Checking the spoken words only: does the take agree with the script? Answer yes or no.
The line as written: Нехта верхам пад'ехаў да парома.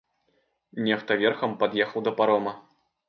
yes